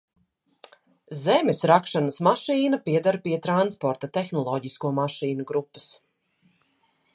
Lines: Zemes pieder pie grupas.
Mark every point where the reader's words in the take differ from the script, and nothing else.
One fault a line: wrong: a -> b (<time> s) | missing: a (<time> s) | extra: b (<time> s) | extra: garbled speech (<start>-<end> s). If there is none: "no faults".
extra: rakšanas mašīna (1.7 s)
extra: transporta tehnoloģisko mašīnu (3.5 s)